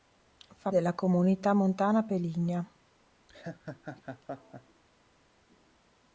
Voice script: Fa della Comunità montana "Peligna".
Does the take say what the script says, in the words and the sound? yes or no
no